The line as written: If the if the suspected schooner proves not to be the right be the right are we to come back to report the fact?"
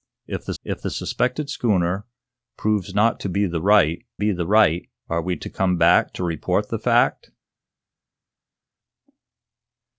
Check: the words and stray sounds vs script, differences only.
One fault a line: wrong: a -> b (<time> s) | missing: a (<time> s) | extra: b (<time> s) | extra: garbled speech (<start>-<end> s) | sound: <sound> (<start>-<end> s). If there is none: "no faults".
no faults